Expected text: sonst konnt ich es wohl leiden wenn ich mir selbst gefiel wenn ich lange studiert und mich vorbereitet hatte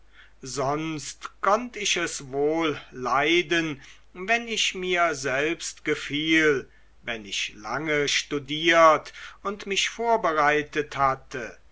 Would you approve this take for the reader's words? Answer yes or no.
yes